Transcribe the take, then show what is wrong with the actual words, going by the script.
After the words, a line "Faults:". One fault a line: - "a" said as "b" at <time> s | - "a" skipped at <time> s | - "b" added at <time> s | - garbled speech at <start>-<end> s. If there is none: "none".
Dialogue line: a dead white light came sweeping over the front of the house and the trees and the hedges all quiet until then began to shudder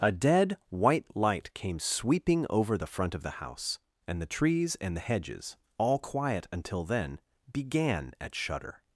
a dead white light came sweeping over the front of the house and the trees and the hedges all quiet until then began at shudder
Faults:
- "to" said as "at" at 8.2 s